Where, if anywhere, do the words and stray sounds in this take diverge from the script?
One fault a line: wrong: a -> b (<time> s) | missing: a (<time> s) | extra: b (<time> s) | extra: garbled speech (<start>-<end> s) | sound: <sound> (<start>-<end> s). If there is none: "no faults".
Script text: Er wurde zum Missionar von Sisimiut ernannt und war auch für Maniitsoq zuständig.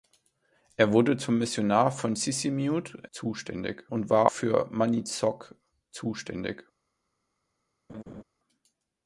wrong: ernannt -> zuständig (3.1 s)
missing: auch (4.3 s)
sound: laugh (7.9-8.2 s)